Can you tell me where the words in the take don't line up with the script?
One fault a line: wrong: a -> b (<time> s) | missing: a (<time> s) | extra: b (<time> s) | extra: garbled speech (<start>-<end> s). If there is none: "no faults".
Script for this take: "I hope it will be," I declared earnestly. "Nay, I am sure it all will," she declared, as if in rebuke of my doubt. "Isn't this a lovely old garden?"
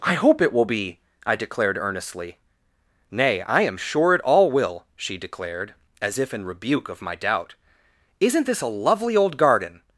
no faults